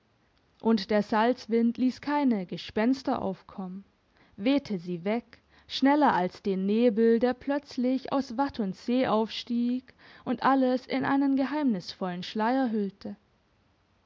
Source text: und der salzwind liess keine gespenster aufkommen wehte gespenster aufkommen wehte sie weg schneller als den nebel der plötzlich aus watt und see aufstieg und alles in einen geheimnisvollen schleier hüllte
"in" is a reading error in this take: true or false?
false